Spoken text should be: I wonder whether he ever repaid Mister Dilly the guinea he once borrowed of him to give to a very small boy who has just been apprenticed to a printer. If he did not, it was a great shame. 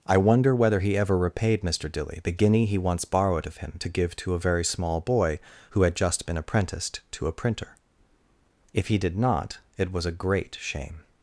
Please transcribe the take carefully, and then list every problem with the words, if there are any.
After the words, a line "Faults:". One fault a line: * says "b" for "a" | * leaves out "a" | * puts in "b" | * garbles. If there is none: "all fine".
I wonder whether he ever repaid Mister Dilly the guinea he once borrowed of him to give to a very small boy who had just been apprenticed to a printer. If he did not, it was a great shame.
Faults:
* says "had" for "has"